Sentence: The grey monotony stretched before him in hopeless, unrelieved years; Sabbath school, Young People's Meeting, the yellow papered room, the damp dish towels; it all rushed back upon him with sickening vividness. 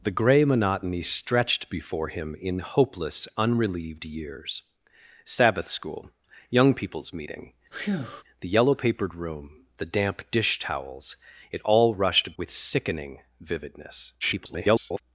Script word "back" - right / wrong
wrong